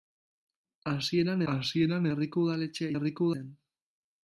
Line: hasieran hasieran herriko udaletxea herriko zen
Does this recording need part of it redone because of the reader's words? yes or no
no